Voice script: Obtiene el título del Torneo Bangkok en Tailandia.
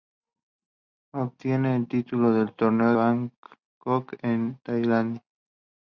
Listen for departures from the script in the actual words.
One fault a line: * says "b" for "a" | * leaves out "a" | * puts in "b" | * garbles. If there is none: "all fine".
all fine